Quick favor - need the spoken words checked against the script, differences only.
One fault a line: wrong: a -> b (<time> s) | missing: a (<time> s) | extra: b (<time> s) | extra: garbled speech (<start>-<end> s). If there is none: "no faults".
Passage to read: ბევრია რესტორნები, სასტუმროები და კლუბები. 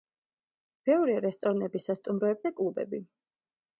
no faults